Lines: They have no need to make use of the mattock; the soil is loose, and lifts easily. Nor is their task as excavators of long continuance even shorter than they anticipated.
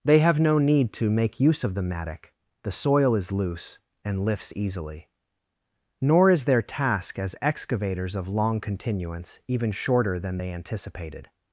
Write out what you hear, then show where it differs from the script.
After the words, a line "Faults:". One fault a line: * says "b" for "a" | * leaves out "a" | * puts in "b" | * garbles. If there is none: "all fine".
They have no need to make use of the mattock; the soil is loose, and lifts easily. Nor is their task as excavators of long continuance even shorter than they anticipated.
Faults:
all fine